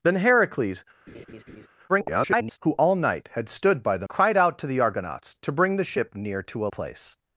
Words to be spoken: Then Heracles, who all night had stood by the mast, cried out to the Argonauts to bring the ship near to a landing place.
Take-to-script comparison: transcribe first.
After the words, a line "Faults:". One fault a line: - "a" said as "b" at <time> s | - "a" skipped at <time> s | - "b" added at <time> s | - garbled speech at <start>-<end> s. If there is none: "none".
Then Heracles, [garbled] who all night had stood by the cried out to the Argonauts to bring the ship near to a place.
Faults:
- garbled speech at 1.9-2.6 s
- "mast" skipped at 4.1 s
- "landing" skipped at 6.7 s